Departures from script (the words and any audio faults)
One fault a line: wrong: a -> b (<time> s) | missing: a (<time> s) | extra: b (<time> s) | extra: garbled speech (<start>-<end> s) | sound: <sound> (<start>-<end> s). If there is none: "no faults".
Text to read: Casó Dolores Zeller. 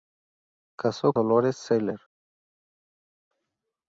no faults